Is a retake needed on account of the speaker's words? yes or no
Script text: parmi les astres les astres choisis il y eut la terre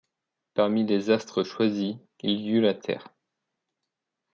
yes